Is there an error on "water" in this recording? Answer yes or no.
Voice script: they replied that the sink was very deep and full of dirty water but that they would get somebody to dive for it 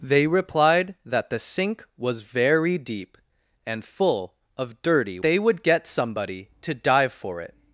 yes